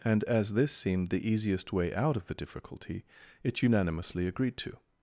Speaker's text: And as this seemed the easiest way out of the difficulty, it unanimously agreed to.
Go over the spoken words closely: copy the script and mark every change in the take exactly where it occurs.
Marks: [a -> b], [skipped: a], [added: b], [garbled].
And as this seemed the easiest way out of the difficulty, it unanimously agreed to.